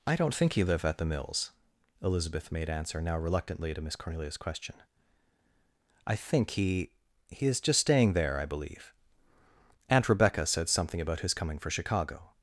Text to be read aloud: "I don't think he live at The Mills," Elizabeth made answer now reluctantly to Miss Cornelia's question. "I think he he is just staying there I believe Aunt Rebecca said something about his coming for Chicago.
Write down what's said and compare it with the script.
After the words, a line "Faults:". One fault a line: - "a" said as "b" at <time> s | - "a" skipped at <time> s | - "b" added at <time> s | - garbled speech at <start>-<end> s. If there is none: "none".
"I don't think he live at The Mills," Elizabeth made answer now reluctantly to Miss Cornelia's question. "I think he he is just staying there I believe Aunt Rebecca said something about his coming for Chicago.
Faults:
none